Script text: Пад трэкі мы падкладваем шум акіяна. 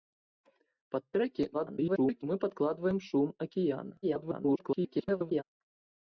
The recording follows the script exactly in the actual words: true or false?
false